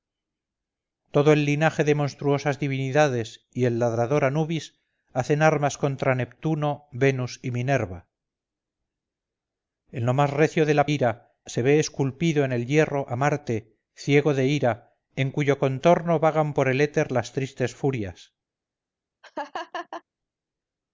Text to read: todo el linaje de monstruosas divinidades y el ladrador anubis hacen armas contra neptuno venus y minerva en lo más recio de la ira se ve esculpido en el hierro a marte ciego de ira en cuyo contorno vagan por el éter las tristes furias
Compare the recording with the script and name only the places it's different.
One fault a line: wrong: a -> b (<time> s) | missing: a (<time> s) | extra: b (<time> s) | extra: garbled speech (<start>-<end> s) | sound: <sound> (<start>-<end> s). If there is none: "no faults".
sound: laugh (19.2-20.0 s)